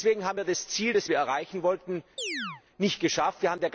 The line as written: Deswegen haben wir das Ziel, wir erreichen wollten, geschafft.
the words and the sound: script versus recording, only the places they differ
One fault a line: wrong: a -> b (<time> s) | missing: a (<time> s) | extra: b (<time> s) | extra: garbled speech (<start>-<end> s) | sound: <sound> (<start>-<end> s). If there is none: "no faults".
extra: das (0.9 s)
sound: chirp (2.2-2.6 s)
extra: nicht (2.8 s)